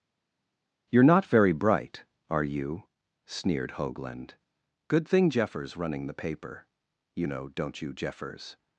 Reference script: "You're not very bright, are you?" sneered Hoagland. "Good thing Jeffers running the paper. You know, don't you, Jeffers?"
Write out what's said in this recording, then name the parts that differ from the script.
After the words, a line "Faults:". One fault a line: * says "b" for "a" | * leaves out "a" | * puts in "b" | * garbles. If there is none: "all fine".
"You're not very bright, are you?" sneered Hoagland. "Good thing Jeffers running the paper. You know, don't you, Jeffers?"
Faults:
all fine